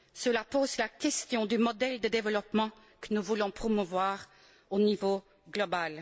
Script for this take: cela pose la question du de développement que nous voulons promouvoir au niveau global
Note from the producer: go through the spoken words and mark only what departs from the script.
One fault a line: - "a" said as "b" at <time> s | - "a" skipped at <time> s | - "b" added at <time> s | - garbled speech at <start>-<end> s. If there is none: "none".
- "modèle" added at 1.6 s